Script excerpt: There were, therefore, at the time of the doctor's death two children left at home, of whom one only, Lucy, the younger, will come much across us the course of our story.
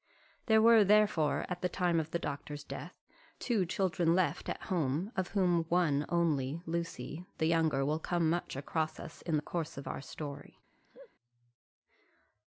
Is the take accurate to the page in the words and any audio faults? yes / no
no